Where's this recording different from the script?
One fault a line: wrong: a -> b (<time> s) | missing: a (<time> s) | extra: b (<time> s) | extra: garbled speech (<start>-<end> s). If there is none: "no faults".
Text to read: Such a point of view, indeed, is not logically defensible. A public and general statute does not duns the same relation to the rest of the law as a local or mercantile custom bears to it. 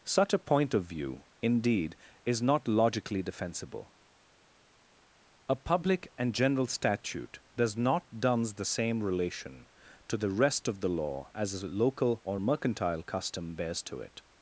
no faults